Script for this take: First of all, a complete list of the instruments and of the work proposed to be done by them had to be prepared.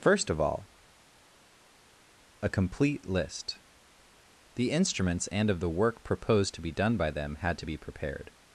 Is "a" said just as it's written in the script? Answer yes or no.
yes